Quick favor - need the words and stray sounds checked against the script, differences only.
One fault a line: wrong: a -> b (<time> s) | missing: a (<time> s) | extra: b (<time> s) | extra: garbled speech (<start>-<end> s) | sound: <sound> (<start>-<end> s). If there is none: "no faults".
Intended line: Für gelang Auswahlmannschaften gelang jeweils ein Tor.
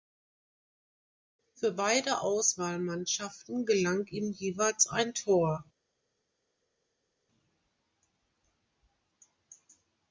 wrong: gelang -> beide (1.7 s)
extra: ihm (4.1 s)